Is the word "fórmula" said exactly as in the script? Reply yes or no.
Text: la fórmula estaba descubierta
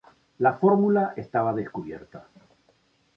yes